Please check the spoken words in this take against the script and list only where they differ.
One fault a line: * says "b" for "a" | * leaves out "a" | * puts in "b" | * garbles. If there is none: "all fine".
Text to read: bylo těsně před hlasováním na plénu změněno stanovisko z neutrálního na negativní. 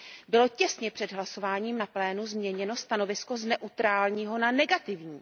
all fine